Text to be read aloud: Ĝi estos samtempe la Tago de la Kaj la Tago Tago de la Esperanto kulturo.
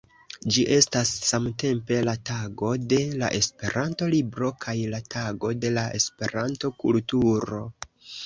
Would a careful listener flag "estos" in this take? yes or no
yes